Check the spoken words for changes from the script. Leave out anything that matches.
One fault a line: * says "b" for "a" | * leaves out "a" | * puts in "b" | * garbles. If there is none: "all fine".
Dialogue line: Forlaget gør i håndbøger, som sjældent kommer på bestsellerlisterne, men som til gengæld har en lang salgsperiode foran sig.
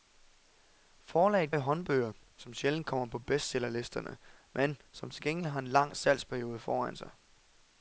* leaves out "gør"